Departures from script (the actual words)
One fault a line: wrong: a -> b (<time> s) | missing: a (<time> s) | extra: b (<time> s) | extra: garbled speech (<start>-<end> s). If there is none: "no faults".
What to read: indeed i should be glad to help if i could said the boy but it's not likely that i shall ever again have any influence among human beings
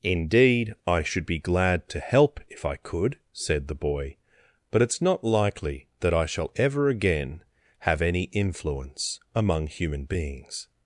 no faults